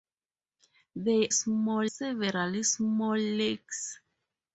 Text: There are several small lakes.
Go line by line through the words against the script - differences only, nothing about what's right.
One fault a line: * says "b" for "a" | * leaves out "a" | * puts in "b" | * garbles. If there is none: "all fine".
* says "small" for "are"